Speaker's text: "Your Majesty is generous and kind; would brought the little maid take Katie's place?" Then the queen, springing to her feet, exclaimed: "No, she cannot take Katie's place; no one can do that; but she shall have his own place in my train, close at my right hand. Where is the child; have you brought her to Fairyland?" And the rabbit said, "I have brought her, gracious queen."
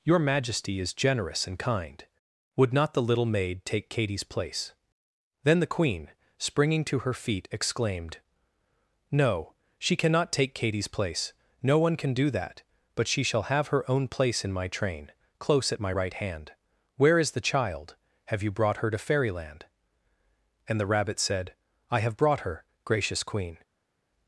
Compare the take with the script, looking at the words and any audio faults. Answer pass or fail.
fail